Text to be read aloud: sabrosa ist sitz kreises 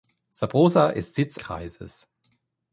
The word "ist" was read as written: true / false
true